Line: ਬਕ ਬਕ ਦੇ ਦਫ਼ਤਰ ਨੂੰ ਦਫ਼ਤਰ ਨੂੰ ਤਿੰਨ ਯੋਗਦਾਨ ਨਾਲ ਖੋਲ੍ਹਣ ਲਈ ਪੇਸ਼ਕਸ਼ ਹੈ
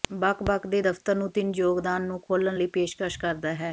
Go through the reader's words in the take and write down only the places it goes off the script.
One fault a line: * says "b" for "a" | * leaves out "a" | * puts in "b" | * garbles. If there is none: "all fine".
* leaves out "ਦਫ਼ਤਰ ਨੂੰ"
* says "ਨੂੰ" for "ਨਾਲ"
* puts in "ਕਰਦਾ"